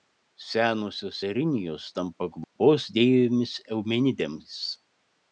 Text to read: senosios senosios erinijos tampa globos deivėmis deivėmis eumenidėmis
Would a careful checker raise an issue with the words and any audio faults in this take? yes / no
yes